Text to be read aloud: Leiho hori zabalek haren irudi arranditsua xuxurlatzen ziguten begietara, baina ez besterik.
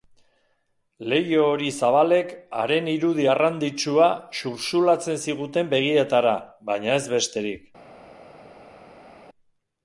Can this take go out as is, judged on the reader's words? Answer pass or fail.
pass